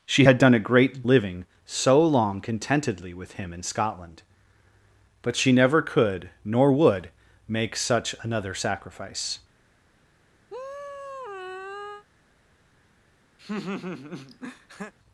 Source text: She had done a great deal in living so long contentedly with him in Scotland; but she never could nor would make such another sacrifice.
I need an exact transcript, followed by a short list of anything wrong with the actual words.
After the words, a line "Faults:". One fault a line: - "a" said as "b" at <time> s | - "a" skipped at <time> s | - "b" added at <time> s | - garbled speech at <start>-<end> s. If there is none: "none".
She had done a great living so long contentedly with him in Scotland; but she never could nor would make such another sacrifice.
Faults:
- "deal in" skipped at 1.0 s